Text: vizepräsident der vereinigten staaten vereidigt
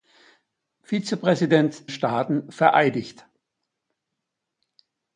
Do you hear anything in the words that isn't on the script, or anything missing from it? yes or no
yes